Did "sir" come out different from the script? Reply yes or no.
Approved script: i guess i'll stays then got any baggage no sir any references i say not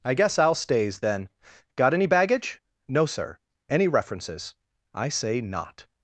no